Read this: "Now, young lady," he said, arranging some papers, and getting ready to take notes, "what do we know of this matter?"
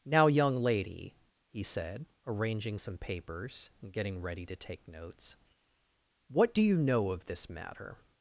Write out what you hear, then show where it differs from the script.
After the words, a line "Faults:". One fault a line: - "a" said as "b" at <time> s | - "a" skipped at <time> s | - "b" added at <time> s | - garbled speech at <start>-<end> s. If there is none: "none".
"Now, young lady," he said, arranging some papers, and getting ready to take notes, "what do you know of this matter?"
Faults:
- "we" said as "you" at 6.6 s